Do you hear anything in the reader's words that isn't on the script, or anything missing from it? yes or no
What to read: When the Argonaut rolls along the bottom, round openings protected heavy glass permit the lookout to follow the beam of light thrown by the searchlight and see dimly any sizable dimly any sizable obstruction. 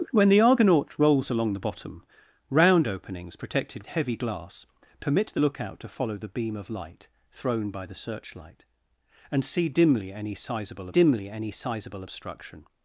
no